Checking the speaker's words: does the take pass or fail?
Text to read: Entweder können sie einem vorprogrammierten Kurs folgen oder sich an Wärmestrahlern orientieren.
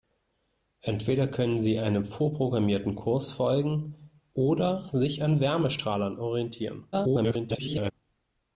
fail